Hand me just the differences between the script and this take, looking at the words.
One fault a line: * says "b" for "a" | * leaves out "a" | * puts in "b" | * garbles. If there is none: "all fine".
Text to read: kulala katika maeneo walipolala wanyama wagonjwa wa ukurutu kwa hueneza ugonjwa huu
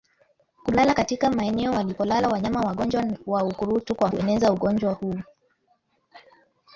all fine